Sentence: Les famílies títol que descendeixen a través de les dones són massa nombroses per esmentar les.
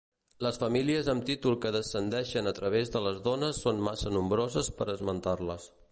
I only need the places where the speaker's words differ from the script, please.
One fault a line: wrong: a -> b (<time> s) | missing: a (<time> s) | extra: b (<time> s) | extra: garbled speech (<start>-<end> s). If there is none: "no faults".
extra: amb (1.1 s)